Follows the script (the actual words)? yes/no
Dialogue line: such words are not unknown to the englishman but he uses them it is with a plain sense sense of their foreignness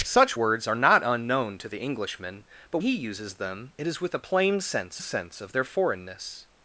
yes